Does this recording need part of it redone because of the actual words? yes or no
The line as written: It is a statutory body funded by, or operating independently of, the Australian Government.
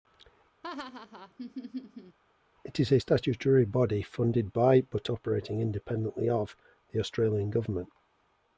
yes